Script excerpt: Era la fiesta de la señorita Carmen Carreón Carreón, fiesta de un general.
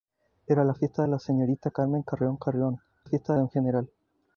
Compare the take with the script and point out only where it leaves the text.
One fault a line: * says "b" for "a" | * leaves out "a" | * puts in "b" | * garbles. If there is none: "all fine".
all fine